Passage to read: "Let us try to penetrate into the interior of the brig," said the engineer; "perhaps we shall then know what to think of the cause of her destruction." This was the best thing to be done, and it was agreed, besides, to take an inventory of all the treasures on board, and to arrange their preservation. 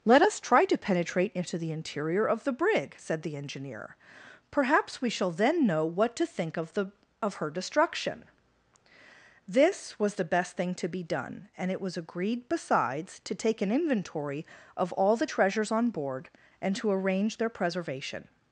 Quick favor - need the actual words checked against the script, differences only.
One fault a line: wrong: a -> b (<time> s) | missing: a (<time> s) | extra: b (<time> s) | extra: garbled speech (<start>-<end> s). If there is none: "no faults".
missing: cause (6.9 s)